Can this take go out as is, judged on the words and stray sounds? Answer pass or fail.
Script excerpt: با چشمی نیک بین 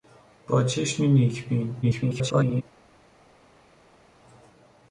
fail